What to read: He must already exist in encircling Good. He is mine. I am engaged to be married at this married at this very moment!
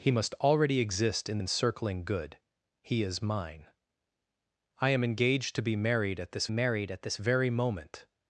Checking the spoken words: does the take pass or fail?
pass